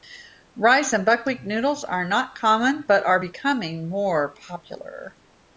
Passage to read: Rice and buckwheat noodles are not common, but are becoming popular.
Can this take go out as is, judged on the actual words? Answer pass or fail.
fail